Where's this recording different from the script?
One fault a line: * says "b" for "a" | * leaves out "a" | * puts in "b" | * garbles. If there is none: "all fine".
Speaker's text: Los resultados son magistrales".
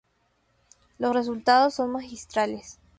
all fine